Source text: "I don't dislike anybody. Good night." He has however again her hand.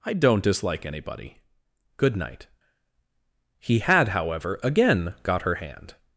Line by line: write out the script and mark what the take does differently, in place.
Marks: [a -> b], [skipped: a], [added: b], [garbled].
"I don't dislike anybody. Good night." He [has -> had] however again [added: got] her hand.